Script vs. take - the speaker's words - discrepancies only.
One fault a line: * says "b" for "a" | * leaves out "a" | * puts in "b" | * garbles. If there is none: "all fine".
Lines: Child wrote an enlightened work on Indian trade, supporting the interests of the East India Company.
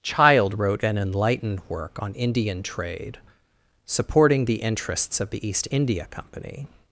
all fine